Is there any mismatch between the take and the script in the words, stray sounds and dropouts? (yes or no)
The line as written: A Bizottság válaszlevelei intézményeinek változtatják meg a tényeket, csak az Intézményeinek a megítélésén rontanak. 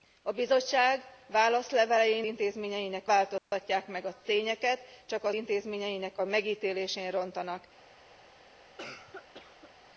yes